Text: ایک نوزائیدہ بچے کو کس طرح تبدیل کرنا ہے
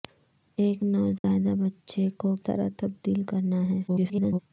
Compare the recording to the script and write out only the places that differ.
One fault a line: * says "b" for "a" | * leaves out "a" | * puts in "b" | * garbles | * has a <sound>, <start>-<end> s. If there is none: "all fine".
* has a dropout, 1.2-1.2 s
* leaves out "کس"
* garbles